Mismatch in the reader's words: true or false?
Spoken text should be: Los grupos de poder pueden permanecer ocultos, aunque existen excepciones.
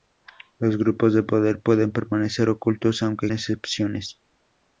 true